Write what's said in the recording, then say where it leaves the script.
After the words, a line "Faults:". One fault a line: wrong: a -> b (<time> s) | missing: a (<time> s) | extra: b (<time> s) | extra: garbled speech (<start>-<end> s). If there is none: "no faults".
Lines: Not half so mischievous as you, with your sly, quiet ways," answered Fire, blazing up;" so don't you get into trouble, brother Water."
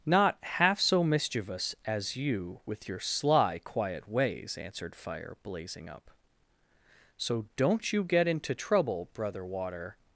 Not half so mischievous as you, with your sly, quiet ways," answered Fire, blazing up;" so don't you get into trouble, brother Water."
Faults:
no faults